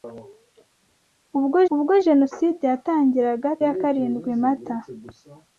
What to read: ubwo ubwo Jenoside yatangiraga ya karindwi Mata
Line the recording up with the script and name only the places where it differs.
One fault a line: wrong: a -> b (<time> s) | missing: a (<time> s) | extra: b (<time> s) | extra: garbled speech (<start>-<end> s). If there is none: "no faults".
no faults